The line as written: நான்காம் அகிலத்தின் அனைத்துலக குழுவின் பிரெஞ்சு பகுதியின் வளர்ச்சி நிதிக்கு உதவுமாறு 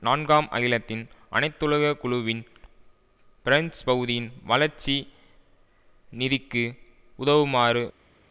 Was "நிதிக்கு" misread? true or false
false